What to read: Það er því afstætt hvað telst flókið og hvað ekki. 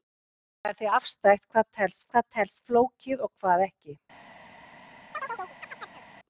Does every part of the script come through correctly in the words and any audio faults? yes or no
no